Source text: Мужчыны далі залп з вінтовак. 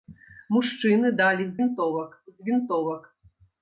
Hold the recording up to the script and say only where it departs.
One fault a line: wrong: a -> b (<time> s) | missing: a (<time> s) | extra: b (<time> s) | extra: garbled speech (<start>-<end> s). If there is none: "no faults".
wrong: залп -> вінтовак (1.6 s)